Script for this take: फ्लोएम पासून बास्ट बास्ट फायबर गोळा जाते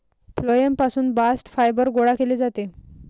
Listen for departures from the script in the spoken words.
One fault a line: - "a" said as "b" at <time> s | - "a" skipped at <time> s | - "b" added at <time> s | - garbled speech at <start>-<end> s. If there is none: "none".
- "बास्ट" skipped at 1.5 s
- "केले" added at 2.1 s